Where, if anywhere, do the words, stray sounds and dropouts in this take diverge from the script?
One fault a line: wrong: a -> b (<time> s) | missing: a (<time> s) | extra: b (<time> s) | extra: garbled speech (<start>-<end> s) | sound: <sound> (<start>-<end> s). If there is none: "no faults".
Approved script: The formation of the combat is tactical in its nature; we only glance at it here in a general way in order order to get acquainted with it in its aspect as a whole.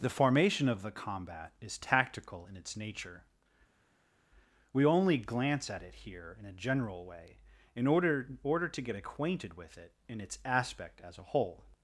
no faults